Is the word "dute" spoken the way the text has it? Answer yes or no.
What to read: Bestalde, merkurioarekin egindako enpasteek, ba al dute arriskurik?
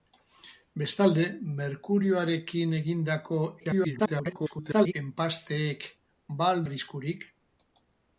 no